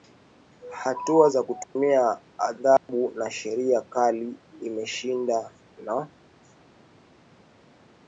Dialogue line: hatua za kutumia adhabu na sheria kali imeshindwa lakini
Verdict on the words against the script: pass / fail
fail